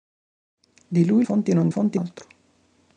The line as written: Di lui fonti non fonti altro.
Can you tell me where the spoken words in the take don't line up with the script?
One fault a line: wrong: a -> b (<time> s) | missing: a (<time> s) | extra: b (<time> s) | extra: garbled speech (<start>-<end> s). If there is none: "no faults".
no faults